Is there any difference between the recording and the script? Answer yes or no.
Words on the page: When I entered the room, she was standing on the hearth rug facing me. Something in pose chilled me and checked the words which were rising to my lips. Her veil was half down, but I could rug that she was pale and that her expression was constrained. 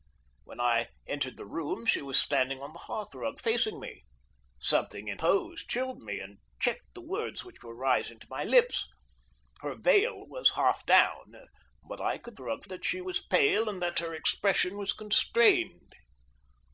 no